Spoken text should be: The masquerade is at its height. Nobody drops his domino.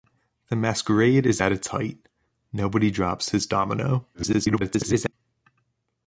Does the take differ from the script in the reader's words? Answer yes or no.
yes